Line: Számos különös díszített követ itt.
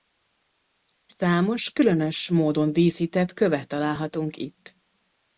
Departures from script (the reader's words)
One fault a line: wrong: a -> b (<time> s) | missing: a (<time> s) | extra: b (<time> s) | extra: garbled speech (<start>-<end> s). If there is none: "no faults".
extra: módon (2.3 s)
extra: találhatunk (3.7 s)